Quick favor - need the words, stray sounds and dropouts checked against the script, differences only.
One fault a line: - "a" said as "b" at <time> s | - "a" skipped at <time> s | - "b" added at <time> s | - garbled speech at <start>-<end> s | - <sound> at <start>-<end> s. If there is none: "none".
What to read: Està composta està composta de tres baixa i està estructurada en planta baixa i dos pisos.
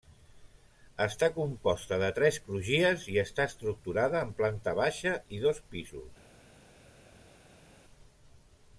- "està composta" skipped at 2.0 s
- "baixa" said as "crugies" at 2.4 s